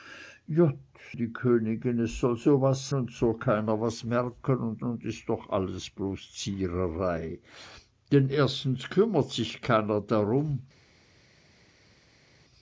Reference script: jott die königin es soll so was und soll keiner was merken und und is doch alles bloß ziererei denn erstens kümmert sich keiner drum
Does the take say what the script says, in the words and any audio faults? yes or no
yes